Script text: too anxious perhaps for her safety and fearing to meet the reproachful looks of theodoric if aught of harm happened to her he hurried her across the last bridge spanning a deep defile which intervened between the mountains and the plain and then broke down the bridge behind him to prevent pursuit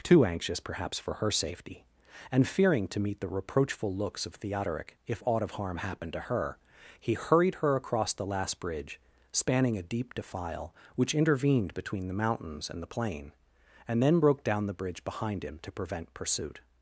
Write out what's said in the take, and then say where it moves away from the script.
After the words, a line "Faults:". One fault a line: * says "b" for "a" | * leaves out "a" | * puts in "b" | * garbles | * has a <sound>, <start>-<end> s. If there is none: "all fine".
too anxious perhaps for her safety and fearing to meet the reproachful looks of theodoric if aught of harm happened to her he hurried her across the last bridge spanning a deep defile which intervened between the mountains and the plain and then broke down the bridge behind him to prevent pursuit
Faults:
all fine